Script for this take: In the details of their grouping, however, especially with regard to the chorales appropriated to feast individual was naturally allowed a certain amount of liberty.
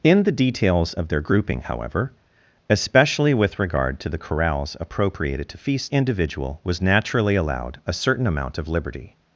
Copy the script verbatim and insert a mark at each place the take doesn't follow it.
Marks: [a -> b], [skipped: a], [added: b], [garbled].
In the details of their grouping, however, especially with regard to the chorales appropriated to feast individual was naturally allowed a certain amount of liberty.